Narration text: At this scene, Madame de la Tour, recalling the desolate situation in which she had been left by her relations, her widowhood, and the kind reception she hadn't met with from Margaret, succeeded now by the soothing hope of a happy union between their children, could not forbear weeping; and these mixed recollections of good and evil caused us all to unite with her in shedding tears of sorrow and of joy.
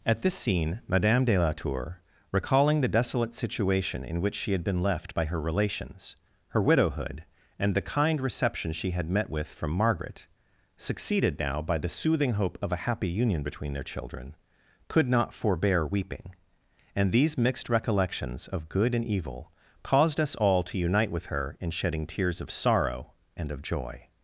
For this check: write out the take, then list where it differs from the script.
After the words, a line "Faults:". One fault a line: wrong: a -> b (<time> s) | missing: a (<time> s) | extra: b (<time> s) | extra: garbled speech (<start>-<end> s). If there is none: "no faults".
At this scene, Madame de la Tour, recalling the desolate situation in which she had been left by her relations, her widowhood, and the kind reception she had met with from Margaret, succeeded now by the soothing hope of a happy union between their children, could not forbear weeping; and these mixed recollections of good and evil caused us all to unite with her in shedding tears of sorrow and of joy.
Faults:
wrong: hadn't -> had (8.9 s)